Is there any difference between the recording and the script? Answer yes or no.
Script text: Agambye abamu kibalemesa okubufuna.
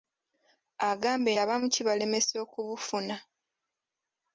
no